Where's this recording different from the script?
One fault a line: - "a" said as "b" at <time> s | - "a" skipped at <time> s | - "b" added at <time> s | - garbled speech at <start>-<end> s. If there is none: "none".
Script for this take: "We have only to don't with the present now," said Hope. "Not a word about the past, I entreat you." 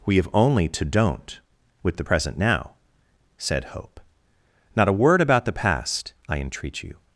none